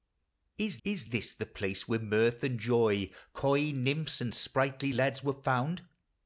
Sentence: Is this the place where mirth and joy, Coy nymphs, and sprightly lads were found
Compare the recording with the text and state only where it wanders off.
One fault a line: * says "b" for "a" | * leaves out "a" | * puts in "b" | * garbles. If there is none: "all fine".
* puts in "is"